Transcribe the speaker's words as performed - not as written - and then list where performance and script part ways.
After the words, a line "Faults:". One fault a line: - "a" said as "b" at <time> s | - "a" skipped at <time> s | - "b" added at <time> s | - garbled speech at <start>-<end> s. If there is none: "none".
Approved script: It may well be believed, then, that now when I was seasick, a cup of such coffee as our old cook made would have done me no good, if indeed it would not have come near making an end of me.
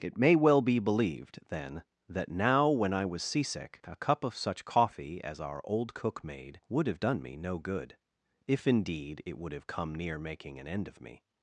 It may well be believed, then, that now when I was seasick, a cup of such coffee as our old cook made would have done me no good, if indeed it would have come near making an end of me.
Faults:
- "not" skipped at 9.5 s